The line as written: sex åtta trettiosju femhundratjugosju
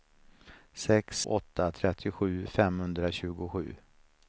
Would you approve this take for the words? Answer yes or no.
yes